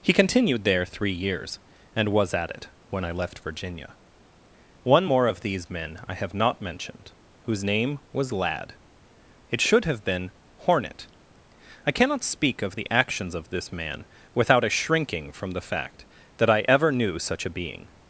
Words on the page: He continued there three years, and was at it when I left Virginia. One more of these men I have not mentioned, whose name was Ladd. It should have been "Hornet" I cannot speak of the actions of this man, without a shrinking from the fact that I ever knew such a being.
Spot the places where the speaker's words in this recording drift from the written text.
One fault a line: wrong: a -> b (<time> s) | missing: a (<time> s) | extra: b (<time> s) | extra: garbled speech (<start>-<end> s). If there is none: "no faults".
no faults